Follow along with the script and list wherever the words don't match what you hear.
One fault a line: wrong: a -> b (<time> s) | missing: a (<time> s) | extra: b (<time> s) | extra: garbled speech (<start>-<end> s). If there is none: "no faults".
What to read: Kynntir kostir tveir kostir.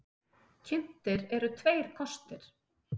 wrong: kostir -> eru (1.4 s)